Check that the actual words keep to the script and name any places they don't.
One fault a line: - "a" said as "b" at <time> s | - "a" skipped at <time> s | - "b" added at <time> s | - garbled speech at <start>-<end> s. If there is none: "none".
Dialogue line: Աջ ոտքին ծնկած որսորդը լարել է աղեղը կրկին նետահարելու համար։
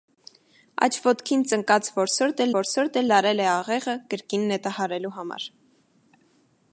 - "որսորդը" added at 2.6 s